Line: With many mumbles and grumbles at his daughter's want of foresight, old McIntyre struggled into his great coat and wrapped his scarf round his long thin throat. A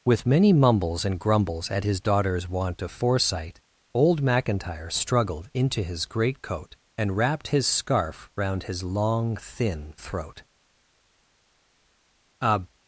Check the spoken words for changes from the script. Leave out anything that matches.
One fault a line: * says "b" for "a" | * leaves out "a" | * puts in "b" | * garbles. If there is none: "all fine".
all fine